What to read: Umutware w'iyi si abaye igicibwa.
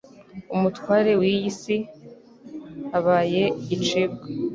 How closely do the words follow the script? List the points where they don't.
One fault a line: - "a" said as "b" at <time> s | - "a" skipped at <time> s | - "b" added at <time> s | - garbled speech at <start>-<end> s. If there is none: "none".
none